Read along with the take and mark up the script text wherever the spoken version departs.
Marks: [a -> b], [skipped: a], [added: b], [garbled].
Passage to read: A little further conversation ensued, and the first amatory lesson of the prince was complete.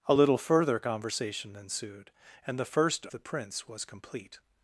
A little further conversation ensued, and the first [skipped: amatory lesson of] the prince was complete.